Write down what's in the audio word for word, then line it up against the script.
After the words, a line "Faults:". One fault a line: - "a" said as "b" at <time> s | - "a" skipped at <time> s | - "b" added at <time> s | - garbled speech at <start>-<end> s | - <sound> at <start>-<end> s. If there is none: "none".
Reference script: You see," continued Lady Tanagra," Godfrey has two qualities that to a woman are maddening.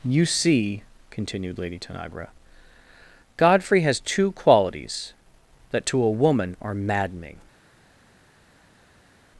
You see," continued Lady Tanagra," Godfrey has two qualities that to a woman are maddening.
Faults:
none